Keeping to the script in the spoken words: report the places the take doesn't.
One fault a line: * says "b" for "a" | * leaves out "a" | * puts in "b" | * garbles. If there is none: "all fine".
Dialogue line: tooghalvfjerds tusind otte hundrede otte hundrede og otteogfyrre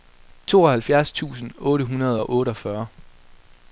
* leaves out "otte hundrede"